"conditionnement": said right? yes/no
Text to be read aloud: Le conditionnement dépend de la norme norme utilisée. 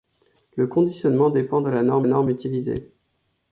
yes